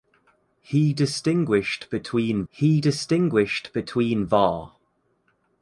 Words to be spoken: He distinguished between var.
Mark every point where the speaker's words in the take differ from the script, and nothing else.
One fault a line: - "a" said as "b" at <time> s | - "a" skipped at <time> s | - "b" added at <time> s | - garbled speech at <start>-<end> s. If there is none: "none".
- "he distinguished between" added at 2.5 s